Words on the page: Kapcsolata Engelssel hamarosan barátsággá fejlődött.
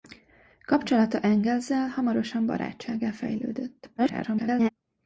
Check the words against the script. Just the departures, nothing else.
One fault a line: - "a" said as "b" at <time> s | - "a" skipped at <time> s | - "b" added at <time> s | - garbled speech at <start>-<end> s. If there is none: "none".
- garbled speech at 4.0-4.7 s